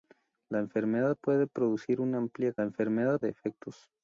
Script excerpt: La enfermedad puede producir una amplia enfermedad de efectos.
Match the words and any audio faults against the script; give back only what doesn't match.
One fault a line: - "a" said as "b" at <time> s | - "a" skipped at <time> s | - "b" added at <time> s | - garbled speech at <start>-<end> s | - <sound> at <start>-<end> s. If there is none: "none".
none